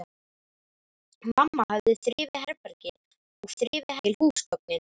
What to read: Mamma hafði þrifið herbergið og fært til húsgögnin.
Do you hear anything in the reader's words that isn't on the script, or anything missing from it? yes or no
yes